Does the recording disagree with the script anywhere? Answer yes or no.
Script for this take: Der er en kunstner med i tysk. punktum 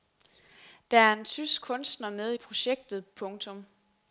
yes